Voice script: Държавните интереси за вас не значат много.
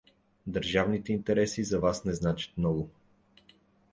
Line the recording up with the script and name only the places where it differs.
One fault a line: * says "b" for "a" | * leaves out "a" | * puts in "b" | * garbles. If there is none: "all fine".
all fine